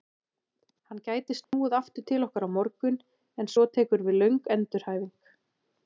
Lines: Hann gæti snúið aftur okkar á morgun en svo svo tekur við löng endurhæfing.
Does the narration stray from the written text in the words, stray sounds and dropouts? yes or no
yes